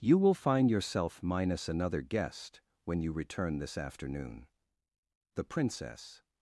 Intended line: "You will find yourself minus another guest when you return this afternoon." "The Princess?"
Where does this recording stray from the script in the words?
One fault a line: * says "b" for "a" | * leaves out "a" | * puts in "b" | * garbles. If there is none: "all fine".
all fine